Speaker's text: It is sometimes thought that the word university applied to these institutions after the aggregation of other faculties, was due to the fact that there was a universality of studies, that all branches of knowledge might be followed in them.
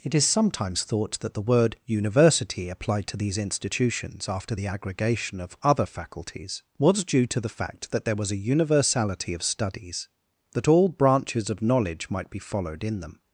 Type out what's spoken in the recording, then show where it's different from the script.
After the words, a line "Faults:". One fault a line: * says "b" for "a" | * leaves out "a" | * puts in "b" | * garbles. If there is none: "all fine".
It is sometimes thought that the word university applied to these institutions after the aggregation of other faculties, was due to the fact that there was a universality of studies, that all branches of knowledge might be followed in them.
Faults:
all fine